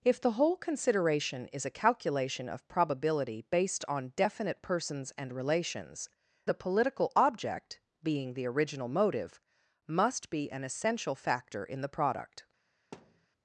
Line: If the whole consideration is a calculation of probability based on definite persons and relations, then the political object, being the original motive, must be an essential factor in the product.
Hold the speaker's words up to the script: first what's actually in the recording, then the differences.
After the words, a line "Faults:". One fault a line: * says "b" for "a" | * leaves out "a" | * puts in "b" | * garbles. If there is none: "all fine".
If the whole consideration is a calculation of probability based on definite persons and relations, the political object, being the original motive, must be an essential factor in the product.
Faults:
* leaves out "then"